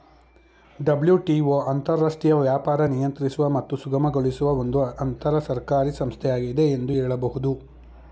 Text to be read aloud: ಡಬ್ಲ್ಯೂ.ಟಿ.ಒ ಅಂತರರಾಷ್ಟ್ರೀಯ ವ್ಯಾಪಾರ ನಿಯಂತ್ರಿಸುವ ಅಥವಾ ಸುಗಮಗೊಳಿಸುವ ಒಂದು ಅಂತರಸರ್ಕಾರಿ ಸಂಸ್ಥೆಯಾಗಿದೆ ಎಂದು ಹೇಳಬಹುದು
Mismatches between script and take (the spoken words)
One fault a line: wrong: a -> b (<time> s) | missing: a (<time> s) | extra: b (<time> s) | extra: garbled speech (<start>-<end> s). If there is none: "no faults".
wrong: ಅಥವಾ -> ಮತ್ತು (3.5 s)